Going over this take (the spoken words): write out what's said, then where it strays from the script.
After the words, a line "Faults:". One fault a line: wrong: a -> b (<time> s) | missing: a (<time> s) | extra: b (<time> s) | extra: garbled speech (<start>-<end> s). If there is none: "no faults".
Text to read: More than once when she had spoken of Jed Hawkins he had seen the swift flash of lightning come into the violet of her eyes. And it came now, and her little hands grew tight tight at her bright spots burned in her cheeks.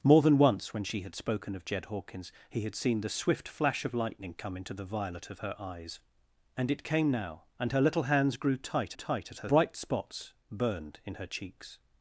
More than once when she had spoken of Jed Hawkins he had seen the swift flash of lightning come into the violet of her eyes. And it came now, and her little hands grew tight tight at her bright spots burned in her cheeks.
Faults:
no faults